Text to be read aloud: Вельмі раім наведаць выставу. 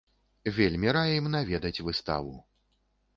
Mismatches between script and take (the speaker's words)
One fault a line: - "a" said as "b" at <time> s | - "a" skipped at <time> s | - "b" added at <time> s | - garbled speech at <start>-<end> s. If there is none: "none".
none